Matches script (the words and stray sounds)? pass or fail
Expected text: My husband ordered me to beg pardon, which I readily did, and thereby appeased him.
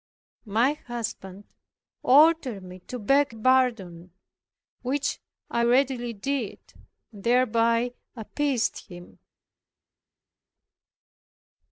pass